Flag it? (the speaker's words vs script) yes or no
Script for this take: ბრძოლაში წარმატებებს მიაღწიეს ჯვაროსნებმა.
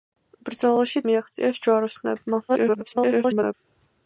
yes